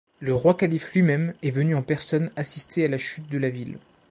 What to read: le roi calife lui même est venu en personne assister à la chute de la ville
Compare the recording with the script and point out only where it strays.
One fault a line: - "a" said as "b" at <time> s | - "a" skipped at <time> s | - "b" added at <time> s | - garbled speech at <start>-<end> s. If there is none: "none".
none